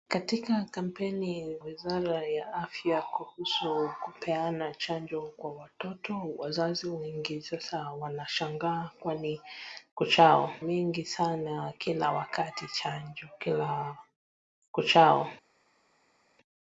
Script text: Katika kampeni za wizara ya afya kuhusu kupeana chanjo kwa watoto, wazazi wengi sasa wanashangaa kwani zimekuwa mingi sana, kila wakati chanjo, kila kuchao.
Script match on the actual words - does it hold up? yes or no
no